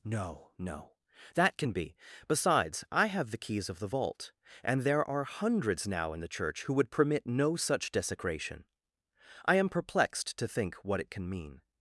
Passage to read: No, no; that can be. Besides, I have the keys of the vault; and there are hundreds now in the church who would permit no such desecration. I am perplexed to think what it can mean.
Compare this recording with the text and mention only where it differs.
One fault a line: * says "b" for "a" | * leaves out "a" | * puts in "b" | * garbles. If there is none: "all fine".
all fine